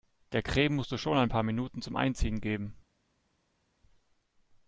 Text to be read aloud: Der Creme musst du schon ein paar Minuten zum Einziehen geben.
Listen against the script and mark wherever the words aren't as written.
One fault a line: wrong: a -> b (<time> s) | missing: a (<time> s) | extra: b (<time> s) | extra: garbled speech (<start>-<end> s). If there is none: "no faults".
no faults